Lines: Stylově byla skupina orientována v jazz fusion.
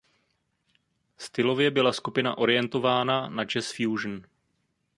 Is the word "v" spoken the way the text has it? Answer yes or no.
no